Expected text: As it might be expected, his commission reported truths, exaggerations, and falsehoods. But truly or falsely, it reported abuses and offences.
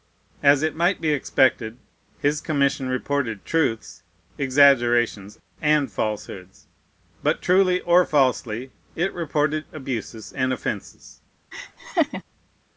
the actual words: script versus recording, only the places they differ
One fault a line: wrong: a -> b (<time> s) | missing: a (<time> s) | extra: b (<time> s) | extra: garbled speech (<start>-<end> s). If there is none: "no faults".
no faults